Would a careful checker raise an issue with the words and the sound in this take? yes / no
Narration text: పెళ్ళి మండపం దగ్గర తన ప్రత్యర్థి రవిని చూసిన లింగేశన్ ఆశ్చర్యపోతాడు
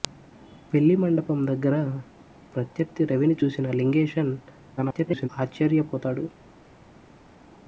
yes